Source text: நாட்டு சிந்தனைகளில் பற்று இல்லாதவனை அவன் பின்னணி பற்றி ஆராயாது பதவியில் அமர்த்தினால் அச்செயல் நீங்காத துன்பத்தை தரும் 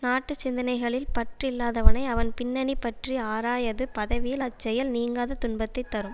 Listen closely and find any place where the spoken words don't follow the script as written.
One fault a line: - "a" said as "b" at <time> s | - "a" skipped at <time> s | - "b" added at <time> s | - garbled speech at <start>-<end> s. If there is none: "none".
- "அமர்த்தினால்" skipped at 4.4 s